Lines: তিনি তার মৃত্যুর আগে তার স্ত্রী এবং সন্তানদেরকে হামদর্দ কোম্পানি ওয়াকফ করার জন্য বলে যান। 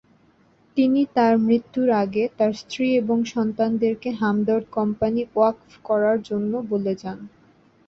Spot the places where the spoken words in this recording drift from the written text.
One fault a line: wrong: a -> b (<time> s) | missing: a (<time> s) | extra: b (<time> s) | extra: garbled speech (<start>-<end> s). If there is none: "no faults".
no faults